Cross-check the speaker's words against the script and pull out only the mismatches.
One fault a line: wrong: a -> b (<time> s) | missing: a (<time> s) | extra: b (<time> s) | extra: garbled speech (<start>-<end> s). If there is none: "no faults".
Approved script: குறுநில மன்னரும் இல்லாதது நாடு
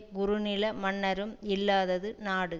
no faults